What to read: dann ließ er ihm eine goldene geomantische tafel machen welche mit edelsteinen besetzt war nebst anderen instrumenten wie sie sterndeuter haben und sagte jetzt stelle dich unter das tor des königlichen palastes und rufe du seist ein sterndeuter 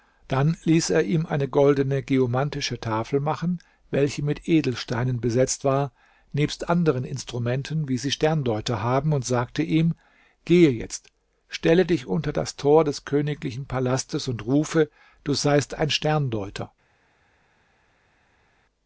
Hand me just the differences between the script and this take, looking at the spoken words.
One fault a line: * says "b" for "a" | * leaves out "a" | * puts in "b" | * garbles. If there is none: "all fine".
* puts in "ihm gehe"